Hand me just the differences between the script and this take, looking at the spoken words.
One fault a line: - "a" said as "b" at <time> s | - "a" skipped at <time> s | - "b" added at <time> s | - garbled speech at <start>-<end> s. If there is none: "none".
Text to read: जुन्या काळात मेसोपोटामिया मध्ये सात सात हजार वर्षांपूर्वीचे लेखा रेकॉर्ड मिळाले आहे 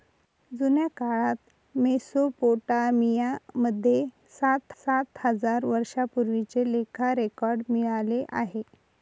none